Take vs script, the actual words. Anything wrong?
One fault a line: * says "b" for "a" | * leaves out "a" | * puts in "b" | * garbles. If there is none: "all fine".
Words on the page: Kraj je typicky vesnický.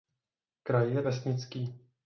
* leaves out "typicky"